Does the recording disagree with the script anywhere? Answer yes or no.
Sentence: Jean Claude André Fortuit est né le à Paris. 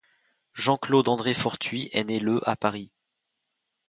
no